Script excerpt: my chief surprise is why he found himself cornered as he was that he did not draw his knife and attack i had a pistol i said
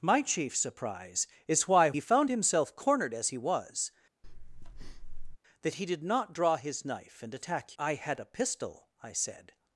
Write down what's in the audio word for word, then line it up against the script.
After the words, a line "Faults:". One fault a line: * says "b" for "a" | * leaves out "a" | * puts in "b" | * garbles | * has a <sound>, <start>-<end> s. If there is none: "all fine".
my chief surprise is why he found himself cornered as he was that he did not draw his knife and attack i had a pistol i said
Faults:
* has a breath, 4.2-5.4 s